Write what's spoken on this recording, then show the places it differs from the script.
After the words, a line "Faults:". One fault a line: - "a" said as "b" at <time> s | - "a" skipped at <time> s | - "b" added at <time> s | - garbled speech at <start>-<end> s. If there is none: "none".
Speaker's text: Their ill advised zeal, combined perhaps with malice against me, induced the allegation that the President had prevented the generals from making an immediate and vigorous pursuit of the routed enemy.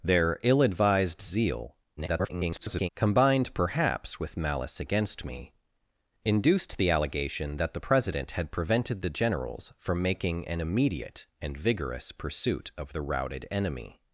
Their ill advised zeal, [garbled] combined perhaps with malice against me, induced the allegation that the President had prevented the generals from making an immediate and vigorous pursuit of the routed enemy.
Faults:
- garbled speech at 2.0-2.9 s